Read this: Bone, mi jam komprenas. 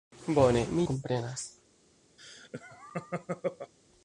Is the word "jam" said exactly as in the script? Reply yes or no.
no